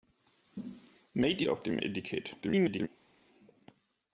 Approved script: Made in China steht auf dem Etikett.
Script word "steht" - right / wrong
wrong